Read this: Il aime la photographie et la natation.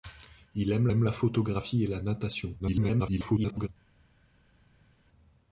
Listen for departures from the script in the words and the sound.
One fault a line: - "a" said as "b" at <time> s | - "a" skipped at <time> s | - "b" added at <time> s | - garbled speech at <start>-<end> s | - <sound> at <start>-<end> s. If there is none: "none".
- "aime" added at 0.9 s
- garbled speech at 2.6-3.7 s